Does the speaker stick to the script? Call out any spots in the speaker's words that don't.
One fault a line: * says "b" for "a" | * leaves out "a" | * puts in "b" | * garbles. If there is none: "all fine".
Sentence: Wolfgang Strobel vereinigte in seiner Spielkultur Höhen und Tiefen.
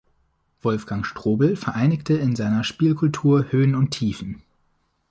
all fine